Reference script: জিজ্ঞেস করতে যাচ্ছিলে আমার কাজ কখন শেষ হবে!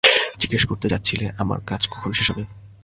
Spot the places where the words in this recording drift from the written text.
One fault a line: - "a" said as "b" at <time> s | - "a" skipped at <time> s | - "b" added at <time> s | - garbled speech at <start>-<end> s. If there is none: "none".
none